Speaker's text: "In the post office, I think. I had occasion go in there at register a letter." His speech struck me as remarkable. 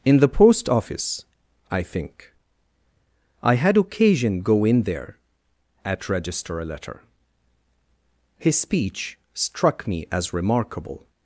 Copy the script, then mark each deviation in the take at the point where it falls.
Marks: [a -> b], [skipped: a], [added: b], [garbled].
"In the post office, I think. I had occasion go in there at register a letter." His speech struck me as remarkable.